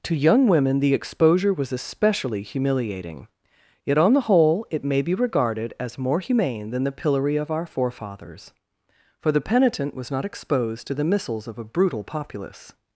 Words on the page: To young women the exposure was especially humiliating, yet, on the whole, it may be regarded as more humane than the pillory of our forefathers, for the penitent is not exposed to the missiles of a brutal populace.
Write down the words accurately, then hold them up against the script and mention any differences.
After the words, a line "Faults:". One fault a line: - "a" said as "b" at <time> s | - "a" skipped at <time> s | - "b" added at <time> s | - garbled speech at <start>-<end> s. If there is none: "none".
To young women the exposure was especially humiliating, yet, on the whole, it may be regarded as more humane than the pillory of our forefathers, for the penitent was not exposed to the missiles of a brutal populace.
Faults:
- "is" said as "was" at 9.9 s